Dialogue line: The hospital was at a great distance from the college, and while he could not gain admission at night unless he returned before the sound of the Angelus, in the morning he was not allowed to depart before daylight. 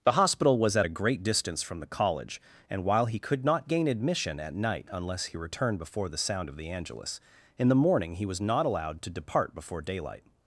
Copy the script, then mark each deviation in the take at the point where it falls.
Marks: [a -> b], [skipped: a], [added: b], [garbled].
The hospital was at a great distance from the college, and while he could not gain admission at night unless he returned before the sound of the Angelus, in the morning he was not allowed to depart before daylight.